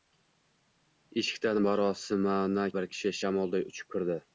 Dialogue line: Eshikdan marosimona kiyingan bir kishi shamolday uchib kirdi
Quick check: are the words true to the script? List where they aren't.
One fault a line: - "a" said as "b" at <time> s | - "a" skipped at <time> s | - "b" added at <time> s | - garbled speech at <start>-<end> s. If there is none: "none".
- "kiyingan" skipped at 2.6 s